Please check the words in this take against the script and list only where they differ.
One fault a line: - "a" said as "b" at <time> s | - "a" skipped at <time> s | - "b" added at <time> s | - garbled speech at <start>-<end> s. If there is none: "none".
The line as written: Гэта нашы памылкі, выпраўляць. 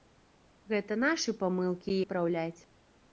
none